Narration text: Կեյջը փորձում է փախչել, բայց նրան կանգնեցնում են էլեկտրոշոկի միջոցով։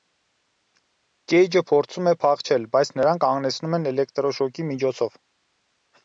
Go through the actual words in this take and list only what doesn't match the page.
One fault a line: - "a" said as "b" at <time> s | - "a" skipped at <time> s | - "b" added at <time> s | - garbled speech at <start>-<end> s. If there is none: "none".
none